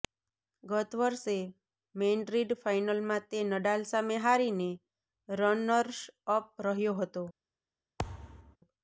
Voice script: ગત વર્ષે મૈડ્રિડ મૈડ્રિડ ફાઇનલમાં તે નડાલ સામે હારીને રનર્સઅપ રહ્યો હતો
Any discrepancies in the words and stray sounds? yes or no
yes